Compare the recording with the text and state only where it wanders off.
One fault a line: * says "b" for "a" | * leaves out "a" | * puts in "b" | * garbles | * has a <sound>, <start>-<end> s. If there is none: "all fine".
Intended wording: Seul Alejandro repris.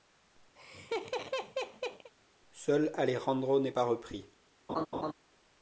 * has a laugh, 0.6-2.1 s
* puts in "n'est pas"
* has a laugh, 4.7-5.1 s